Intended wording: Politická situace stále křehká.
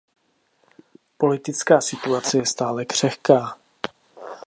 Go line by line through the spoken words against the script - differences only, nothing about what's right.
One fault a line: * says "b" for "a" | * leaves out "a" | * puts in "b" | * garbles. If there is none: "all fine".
* puts in "je"